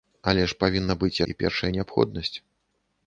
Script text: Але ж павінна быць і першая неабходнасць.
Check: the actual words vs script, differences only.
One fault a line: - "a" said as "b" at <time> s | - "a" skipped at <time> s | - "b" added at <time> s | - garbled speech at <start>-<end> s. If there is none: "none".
none